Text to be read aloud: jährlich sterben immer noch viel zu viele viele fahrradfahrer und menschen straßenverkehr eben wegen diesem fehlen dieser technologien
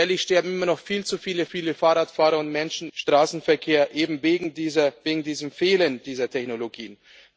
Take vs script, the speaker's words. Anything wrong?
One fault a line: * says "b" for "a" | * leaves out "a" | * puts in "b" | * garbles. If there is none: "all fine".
all fine